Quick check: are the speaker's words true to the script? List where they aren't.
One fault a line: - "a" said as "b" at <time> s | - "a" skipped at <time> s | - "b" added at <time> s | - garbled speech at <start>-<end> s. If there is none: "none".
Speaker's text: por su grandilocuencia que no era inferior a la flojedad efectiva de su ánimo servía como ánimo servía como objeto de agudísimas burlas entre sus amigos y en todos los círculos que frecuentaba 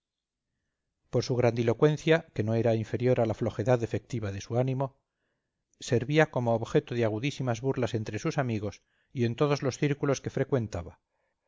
- "ánimo servía como" skipped at 6.5 s